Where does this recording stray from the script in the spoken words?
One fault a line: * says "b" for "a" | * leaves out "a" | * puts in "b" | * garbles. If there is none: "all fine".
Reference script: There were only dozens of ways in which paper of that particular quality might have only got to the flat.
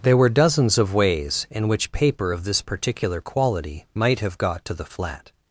* leaves out "only"
* says "this" for "that"
* leaves out "only"